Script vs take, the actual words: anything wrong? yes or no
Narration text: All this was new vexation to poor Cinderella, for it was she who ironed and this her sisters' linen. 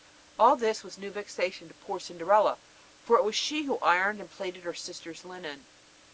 yes